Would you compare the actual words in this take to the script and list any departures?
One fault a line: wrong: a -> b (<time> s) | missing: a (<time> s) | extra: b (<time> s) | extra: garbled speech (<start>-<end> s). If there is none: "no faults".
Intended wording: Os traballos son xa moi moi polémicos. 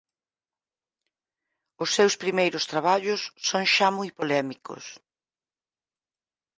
extra: seus primeiros (2.0 s)
missing: moi (4.1 s)